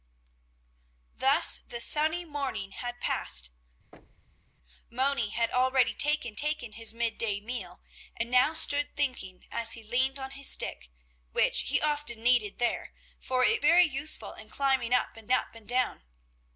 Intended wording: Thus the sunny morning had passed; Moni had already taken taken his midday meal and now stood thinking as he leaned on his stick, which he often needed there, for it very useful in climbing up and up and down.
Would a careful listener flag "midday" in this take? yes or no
no